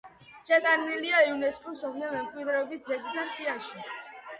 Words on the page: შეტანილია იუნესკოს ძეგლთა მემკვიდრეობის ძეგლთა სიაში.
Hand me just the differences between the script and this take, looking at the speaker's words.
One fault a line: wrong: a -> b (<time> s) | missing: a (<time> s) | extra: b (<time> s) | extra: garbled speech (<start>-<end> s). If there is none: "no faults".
wrong: ძეგლთა -> მსოფლიო (1.8 s)